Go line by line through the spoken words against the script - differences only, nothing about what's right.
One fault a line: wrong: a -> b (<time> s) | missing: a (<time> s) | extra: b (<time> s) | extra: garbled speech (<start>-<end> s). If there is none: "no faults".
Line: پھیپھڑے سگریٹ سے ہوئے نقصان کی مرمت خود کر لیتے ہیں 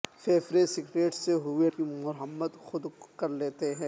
missing: نقصان (1.7 s)